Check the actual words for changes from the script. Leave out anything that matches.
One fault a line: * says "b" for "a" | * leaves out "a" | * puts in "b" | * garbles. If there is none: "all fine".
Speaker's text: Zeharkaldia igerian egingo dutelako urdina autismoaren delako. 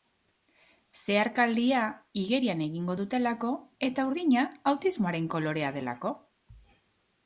* puts in "eta"
* puts in "kolorea"